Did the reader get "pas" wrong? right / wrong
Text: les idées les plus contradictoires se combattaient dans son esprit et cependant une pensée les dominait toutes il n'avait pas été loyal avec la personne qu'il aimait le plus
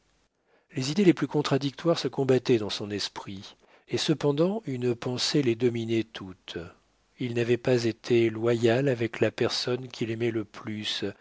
right